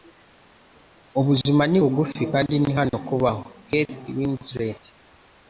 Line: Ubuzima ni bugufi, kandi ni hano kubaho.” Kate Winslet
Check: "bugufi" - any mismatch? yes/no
no